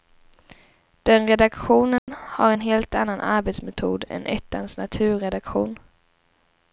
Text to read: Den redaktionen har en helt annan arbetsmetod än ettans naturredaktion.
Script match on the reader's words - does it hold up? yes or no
yes